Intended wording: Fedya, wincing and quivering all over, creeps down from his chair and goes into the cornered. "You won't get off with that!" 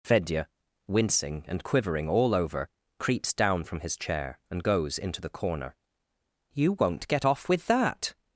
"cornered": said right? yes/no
no